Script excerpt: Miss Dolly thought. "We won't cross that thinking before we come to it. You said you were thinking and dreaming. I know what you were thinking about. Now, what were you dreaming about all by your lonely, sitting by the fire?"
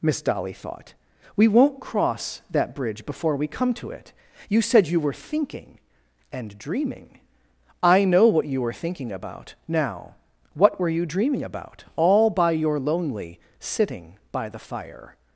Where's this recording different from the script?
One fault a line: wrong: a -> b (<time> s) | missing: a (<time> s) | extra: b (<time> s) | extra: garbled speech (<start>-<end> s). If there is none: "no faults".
wrong: thinking -> bridge (2.8 s)